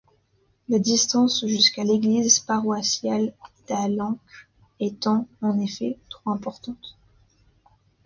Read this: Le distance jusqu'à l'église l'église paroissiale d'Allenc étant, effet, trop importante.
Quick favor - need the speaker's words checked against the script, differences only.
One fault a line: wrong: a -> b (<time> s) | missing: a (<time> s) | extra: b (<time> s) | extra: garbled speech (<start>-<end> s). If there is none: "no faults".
wrong: Le -> La (0.7 s)
missing: l'église (2.4 s)
extra: en (5.4 s)